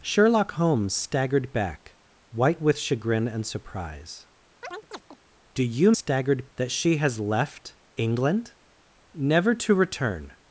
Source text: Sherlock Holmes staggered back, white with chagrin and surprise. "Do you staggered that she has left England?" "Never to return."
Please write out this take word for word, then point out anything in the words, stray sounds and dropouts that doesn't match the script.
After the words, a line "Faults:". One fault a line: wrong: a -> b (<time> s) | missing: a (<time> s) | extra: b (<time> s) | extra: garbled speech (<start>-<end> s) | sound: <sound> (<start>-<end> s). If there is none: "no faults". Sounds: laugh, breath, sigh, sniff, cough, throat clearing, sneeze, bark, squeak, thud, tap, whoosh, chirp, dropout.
Sherlock Holmes staggered back, white with chagrin and surprise. "Do you staggered that she has left England?" "Never to return."
Faults:
sound: chirp (4.6-5.2 s)